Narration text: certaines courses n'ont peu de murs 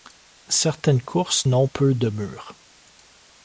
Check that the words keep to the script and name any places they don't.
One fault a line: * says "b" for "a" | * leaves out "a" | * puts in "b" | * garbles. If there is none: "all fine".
all fine